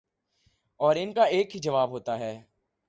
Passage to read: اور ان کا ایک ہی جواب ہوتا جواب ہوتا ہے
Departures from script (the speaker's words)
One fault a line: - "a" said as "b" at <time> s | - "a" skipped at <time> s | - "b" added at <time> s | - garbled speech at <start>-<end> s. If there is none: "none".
- "جواب ہوتا" skipped at 2.2 s